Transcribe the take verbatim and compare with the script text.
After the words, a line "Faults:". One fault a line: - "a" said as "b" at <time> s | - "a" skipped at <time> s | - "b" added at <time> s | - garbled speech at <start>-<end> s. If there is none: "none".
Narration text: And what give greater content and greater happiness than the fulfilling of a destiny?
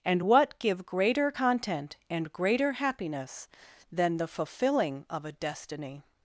And what give greater content and greater happiness than the fulfilling of a destiny?
Faults:
none